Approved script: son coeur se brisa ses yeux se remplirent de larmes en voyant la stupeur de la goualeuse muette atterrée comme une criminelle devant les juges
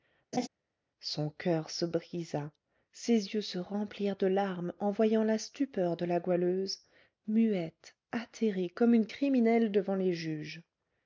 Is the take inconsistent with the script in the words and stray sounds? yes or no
yes